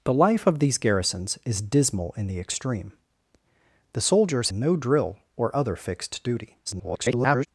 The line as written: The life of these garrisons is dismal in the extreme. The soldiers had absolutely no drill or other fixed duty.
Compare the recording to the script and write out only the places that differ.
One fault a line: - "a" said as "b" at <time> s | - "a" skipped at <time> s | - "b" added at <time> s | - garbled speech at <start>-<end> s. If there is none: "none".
- "had absolutely" skipped at 4.5 s
- garbled speech at 6.7-7.5 s